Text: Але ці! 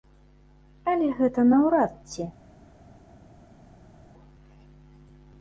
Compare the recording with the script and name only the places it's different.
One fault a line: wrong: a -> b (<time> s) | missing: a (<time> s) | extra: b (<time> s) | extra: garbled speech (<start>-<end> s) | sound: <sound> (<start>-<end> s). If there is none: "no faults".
extra: гэта наўрад (1.2 s)